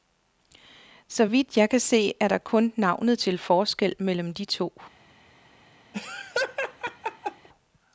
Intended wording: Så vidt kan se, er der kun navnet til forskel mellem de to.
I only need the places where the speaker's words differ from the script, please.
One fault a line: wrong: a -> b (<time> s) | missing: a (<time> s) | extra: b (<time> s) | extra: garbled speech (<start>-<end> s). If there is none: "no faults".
extra: jeg (1.6 s)